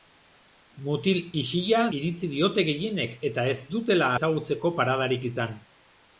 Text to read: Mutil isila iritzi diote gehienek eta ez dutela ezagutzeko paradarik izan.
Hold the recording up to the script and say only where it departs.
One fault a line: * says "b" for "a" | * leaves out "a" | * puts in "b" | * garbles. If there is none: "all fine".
all fine